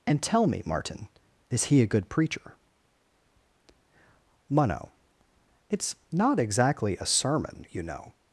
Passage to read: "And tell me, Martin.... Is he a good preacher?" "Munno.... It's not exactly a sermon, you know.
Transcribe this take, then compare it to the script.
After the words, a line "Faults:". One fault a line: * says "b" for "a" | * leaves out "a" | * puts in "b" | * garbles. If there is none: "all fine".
"And tell me, Martin.... Is he a good preacher?" "Munno.... It's not exactly a sermon, you know.
Faults:
all fine